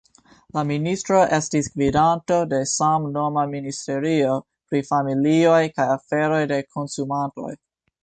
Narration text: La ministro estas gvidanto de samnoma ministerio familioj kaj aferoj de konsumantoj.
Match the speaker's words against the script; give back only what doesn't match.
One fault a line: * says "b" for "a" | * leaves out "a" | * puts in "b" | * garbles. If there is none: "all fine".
* says "estis" for "estas"
* puts in "pri"